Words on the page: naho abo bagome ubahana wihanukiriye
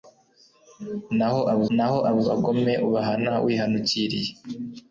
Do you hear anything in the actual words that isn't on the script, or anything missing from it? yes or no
yes